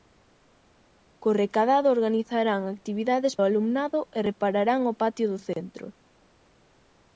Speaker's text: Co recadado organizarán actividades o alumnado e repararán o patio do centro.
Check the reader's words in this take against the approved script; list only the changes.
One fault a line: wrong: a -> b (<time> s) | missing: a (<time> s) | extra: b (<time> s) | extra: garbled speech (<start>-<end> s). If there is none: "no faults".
no faults